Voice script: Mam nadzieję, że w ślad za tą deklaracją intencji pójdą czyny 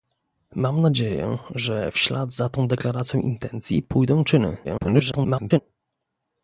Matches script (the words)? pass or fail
fail